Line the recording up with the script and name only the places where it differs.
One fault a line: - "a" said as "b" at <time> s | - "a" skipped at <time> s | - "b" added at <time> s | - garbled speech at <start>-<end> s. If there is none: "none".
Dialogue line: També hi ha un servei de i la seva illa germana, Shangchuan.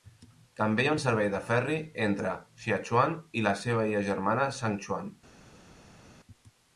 - "ferri entre Xiachuan" added at 1.5 s